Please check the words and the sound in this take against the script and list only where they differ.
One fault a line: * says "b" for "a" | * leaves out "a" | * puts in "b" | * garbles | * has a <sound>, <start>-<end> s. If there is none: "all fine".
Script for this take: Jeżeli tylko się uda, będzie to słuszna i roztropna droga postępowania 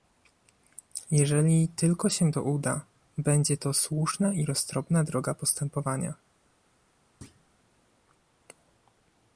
* puts in "to"
* has a thud, 7.2-7.4 s